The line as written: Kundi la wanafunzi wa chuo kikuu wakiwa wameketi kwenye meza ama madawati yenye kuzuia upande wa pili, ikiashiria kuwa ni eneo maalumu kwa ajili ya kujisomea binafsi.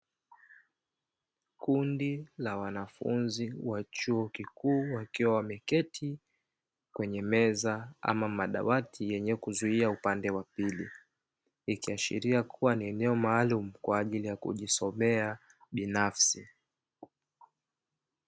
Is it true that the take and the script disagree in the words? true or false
false